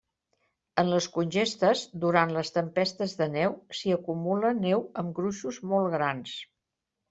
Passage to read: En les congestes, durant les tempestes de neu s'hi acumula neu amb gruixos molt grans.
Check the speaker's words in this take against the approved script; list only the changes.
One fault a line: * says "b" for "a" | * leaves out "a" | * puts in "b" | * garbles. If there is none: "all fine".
all fine